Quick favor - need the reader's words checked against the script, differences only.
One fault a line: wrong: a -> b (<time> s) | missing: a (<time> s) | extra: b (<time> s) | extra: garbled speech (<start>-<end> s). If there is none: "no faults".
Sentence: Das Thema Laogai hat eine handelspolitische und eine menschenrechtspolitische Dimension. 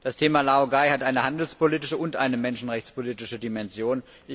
no faults